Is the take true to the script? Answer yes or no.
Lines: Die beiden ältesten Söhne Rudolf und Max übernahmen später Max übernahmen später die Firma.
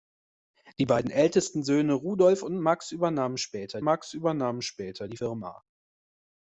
yes